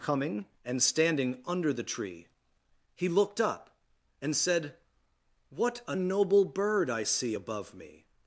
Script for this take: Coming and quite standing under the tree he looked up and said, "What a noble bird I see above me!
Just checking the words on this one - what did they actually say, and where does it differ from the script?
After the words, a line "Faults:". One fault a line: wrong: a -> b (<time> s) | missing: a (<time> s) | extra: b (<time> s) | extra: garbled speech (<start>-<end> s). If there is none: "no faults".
Coming and standing under the tree he looked up and said, "What a noble bird I see above me!
Faults:
missing: quite (0.8 s)